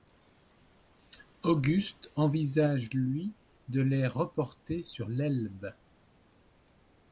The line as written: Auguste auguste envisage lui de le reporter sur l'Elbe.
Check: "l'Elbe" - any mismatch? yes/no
no